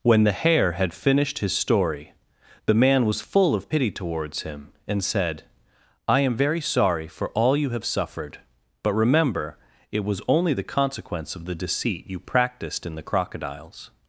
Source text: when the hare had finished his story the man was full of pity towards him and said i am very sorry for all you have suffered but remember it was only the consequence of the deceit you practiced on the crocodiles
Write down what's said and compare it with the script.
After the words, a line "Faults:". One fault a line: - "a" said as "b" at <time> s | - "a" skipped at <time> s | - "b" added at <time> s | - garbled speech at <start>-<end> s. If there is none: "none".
when the hare had finished his story the man was full of pity towards him and said i am very sorry for all you have suffered but remember it was only the consequence of the deceit you practiced in the crocodiles
Faults:
- "on" said as "in" at 12.8 s